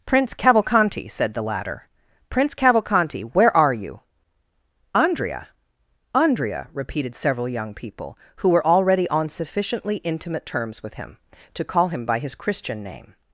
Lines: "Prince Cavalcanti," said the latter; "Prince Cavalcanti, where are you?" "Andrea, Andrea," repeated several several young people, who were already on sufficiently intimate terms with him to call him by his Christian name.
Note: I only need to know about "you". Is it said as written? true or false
true